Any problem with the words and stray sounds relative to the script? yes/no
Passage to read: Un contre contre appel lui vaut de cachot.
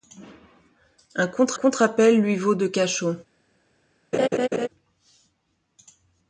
yes